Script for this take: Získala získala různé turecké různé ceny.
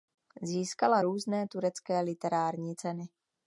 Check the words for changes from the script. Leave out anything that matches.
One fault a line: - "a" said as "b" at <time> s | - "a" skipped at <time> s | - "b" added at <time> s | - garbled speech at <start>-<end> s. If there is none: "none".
- "získala" skipped at 1.0 s
- "různé" said as "literární" at 2.0 s